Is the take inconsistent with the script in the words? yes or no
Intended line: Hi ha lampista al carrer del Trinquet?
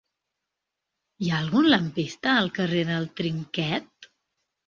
yes